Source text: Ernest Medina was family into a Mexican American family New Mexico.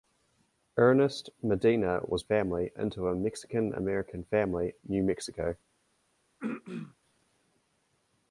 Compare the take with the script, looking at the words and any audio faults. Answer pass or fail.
fail